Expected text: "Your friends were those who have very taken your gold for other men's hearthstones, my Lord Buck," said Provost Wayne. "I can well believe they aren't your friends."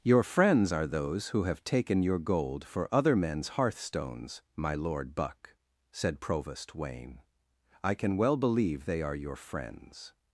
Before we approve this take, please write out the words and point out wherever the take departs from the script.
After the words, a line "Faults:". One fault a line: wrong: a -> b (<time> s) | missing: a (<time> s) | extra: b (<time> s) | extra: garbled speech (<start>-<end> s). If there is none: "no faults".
"Your friends are those who have taken your gold for other men's hearthstones, my Lord Buck," said Provost Wayne. "I can well believe they are your friends."
Faults:
wrong: were -> are (0.7 s)
missing: very (1.6 s)
wrong: aren't -> are (9.0 s)